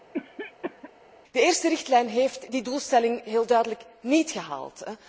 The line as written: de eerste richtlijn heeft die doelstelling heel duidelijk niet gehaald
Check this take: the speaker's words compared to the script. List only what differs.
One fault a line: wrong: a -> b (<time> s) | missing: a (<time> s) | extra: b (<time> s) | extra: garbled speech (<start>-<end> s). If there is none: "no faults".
no faults